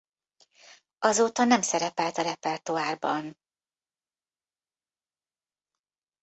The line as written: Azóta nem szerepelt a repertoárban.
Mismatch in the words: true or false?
false